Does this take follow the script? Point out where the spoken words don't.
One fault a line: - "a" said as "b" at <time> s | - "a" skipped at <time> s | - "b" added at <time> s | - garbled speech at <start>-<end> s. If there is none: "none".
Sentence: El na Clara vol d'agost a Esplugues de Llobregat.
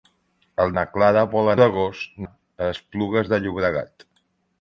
none